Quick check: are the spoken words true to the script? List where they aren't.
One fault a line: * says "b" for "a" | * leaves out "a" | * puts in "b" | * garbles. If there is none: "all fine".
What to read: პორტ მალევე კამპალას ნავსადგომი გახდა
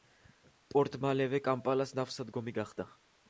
all fine